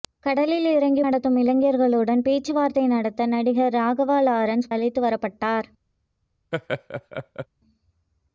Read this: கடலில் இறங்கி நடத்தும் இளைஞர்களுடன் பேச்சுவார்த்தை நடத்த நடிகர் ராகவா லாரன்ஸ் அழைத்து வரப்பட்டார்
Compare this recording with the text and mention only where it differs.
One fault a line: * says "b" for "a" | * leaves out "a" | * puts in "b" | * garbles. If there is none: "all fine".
all fine